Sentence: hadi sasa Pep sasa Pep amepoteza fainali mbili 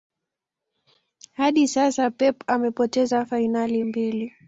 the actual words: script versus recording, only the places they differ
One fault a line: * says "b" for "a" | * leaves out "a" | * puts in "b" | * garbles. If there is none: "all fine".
* leaves out "sasa Pep"